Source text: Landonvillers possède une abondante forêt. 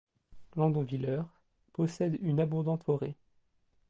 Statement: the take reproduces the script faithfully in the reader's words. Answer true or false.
true